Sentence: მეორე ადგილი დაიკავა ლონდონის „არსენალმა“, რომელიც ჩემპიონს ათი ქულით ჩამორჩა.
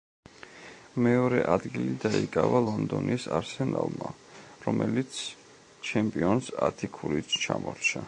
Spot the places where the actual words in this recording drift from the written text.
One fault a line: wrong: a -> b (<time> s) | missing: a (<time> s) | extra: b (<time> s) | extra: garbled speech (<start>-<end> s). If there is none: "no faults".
no faults